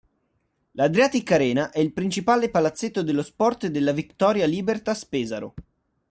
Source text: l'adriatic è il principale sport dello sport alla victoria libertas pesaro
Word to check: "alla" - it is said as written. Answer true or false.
false